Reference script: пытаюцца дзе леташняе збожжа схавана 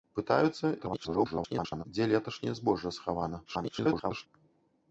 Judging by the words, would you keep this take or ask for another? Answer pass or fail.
fail